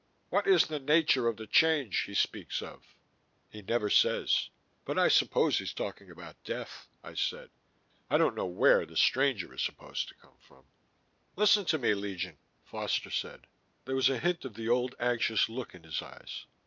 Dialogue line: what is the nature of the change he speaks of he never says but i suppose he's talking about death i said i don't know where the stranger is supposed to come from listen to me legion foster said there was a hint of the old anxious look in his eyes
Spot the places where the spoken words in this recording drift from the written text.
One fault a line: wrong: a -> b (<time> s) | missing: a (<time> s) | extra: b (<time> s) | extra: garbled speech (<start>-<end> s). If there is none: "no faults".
no faults